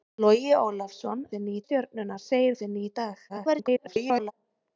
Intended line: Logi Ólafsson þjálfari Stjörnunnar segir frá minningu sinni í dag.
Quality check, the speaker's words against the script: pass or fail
fail